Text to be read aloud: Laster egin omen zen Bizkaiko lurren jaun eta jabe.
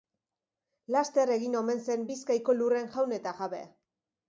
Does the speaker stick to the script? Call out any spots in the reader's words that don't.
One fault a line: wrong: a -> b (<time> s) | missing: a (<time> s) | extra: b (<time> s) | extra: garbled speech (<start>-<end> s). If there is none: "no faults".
no faults